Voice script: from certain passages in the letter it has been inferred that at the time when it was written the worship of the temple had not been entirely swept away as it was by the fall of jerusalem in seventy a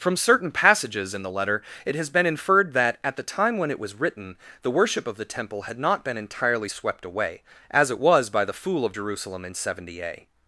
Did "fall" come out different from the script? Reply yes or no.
yes